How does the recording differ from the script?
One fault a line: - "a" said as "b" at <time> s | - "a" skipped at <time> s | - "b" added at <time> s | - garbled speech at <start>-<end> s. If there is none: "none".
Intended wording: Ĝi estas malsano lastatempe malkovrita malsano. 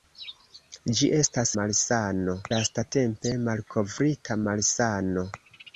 none